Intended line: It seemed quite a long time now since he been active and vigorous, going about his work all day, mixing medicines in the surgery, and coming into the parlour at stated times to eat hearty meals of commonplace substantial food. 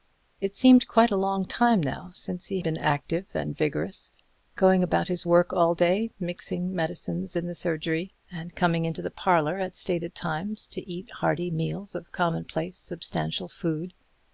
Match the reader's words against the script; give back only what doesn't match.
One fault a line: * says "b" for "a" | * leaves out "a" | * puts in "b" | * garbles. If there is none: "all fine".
all fine